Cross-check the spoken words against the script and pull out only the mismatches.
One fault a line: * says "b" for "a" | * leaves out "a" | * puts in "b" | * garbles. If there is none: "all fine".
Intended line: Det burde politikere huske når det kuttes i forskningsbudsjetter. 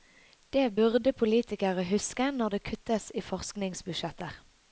all fine